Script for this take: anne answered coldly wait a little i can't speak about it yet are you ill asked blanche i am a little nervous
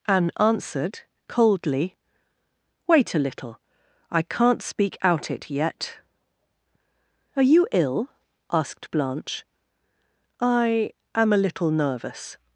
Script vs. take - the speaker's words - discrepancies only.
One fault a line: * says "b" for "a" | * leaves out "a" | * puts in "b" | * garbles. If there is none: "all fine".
* says "out" for "about"